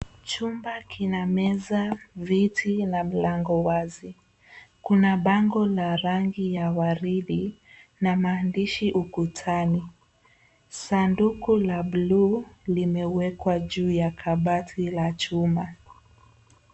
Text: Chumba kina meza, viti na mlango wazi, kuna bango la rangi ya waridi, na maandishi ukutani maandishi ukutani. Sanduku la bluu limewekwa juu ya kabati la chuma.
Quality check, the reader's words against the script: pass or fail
fail